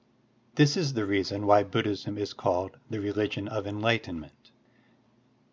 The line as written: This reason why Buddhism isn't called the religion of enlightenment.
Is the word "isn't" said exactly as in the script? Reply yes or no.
no